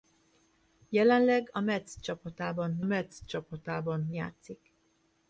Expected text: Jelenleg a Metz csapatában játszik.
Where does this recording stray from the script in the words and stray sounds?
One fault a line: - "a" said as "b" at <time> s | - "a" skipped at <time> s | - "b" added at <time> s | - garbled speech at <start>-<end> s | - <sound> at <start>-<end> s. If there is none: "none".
- "Metz csapatában" added at 2.8 s